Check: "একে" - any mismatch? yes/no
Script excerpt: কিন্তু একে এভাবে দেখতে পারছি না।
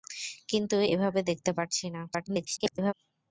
yes